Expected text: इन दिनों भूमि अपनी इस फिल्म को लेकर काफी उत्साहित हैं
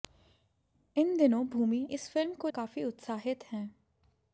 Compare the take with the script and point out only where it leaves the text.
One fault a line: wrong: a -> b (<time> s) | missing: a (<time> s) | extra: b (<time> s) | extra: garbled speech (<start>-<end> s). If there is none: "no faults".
missing: अपनी (1.9 s)
missing: लेकर (2.5 s)